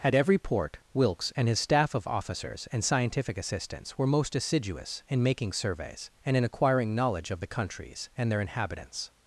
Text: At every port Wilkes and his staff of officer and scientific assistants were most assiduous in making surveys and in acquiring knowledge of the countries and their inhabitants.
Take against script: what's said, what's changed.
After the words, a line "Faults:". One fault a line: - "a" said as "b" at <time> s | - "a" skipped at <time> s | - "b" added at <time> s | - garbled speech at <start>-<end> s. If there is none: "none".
At every port Wilkes and his staff of officers and scientific assistants were most assiduous in making surveys and in acquiring knowledge of the countries and their inhabitants.
Faults:
- "officer" said as "officers" at 2.1 s